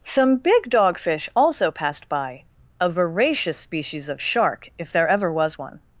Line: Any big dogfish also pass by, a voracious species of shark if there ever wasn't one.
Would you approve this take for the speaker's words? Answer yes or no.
no